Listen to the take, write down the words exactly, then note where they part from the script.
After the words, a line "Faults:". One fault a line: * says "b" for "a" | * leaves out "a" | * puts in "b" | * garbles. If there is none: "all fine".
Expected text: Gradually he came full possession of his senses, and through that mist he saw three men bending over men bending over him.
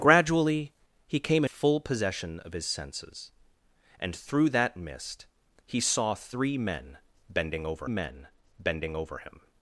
Gradually he came full possession of his senses, and through that mist he saw three men bending over men bending over him.
Faults:
all fine